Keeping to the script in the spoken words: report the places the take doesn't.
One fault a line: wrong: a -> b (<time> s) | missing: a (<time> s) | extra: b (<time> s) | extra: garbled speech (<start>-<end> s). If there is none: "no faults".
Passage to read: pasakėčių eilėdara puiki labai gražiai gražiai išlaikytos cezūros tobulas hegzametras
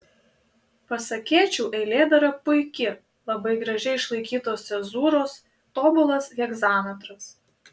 missing: gražiai (4.0 s)